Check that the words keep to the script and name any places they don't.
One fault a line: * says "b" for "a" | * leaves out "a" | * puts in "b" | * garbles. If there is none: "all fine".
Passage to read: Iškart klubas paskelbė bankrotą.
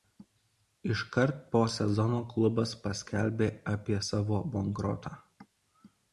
* puts in "po sezono"
* puts in "apie savo"